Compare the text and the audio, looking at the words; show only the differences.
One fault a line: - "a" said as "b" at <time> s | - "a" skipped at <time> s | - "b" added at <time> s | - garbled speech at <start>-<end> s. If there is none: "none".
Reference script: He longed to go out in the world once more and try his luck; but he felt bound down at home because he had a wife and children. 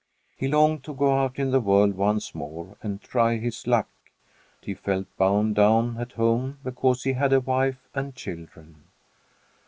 - "but" skipped at 3.9 s